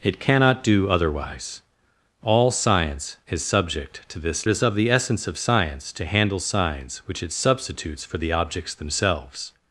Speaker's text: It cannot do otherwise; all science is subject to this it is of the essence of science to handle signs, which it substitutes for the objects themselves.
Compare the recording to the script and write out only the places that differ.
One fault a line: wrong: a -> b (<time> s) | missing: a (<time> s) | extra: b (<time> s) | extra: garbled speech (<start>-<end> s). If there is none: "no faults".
no faults